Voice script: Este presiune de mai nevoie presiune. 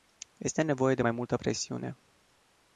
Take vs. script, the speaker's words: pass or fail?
fail